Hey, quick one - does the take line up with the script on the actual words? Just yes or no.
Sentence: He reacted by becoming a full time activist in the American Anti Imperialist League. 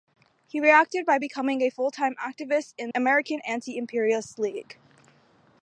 no